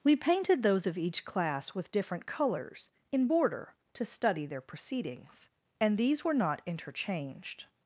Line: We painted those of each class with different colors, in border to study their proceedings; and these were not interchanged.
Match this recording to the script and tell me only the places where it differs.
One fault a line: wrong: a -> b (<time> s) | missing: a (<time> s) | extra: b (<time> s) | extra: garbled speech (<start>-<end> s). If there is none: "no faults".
no faults